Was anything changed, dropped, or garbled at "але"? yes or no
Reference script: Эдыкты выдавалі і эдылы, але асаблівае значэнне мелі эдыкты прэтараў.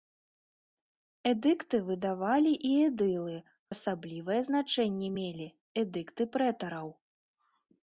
yes